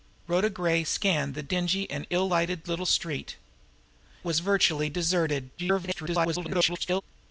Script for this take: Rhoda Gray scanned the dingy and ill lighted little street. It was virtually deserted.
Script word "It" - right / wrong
wrong